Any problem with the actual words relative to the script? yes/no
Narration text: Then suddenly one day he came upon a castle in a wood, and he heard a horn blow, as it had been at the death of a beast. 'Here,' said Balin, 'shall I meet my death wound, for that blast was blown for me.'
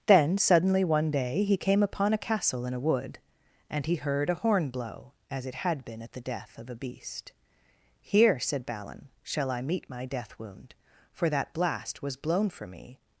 no